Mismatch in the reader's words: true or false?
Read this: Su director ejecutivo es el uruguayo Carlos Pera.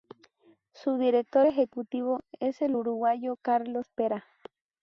false